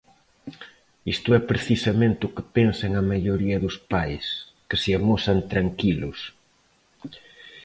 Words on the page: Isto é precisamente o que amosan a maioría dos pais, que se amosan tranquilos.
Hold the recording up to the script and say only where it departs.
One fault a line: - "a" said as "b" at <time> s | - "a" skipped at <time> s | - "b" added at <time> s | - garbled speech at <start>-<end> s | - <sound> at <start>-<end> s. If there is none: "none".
- "amosan" said as "pensan" at 2.6 s